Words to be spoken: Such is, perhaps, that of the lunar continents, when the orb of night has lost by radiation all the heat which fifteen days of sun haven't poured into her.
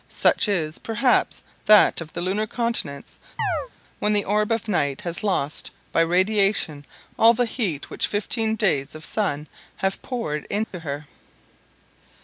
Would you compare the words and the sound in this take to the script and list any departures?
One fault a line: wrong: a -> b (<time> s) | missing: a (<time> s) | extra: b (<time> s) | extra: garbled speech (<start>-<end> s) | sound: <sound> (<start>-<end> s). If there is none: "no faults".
sound: chirp (3.4-3.7 s)
wrong: haven't -> have (9.8 s)
sound: dropout (10.6-10.7 s)